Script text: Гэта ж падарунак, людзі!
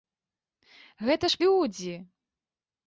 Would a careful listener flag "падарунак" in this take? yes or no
yes